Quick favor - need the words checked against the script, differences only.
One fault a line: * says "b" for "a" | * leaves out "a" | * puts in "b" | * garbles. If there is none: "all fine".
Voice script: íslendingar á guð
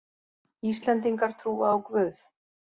* puts in "trúa"